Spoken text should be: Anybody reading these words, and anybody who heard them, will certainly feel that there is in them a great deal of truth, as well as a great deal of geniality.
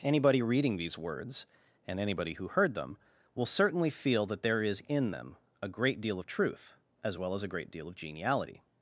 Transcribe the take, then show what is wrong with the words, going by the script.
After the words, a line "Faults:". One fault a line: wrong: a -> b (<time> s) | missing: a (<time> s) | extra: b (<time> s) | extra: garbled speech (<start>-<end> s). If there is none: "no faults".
Anybody reading these words, and anybody who heard them, will certainly feel that there is in them a great deal of truth, as well as a great deal of geniality.
Faults:
no faults